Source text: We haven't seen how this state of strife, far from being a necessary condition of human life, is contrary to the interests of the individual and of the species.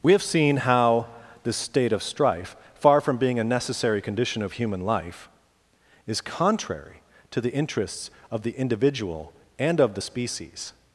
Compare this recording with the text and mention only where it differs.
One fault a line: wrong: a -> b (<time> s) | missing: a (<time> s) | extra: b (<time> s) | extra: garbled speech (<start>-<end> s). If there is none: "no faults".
wrong: haven't -> have (0.1 s)